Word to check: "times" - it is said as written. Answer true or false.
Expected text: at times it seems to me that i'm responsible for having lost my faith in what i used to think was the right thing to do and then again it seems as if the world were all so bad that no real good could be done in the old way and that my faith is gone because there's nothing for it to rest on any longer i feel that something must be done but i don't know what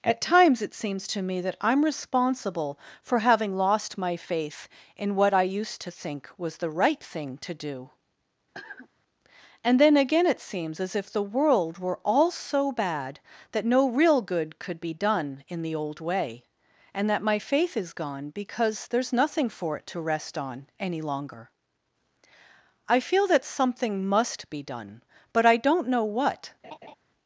true